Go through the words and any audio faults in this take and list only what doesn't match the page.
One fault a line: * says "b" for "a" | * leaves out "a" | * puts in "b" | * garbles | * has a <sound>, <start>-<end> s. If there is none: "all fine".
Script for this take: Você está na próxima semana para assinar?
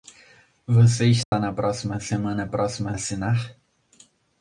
* has a dropout, 1.2-1.3 s
* says "próxima" for "para"